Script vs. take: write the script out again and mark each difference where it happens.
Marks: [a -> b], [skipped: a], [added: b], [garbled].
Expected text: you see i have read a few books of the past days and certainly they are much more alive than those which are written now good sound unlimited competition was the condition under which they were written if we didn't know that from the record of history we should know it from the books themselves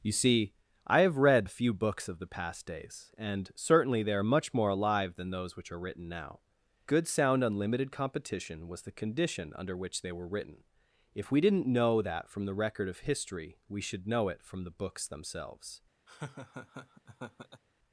you see i have read a few books of the past days and certainly they are much more alive than those which are written now good sound unlimited competition was the condition under which they were written if we didn't know that from the record of history we should know it from the books themselves